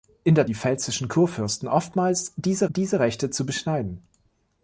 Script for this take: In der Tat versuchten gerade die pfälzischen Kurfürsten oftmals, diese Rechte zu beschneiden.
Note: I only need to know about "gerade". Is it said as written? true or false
false